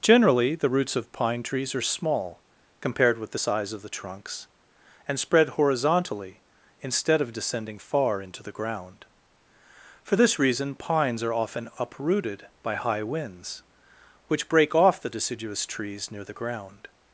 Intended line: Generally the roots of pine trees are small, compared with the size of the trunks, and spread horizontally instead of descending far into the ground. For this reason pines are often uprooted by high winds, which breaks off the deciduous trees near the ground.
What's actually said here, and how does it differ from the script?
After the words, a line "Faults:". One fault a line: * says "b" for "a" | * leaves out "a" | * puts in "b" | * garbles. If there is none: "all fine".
Generally the roots of pine trees are small, compared with the size of the trunks, and spread horizontally instead of descending far into the ground. For this reason pines are often uprooted by high winds, which break off the deciduous trees near the ground.
Faults:
* says "break" for "breaks"